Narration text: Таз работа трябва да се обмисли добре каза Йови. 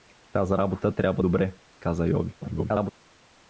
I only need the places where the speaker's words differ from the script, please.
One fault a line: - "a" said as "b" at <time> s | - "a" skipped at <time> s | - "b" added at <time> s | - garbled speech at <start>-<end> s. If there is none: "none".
- "да се обмисли" skipped at 1.2 s
- garbled speech at 2.4-2.9 s